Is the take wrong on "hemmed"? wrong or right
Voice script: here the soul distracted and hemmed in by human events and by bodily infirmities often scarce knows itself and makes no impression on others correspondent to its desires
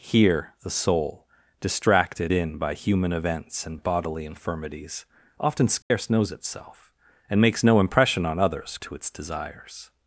wrong